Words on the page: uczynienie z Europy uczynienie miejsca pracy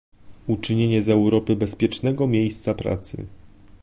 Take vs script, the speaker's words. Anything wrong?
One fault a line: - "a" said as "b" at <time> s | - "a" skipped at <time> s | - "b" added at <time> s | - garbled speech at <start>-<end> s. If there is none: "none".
- "uczynienie" said as "bezpiecznego" at 1.5 s